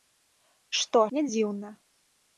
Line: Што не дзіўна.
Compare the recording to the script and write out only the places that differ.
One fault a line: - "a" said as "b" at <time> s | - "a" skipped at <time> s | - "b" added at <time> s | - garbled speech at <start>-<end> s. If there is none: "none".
none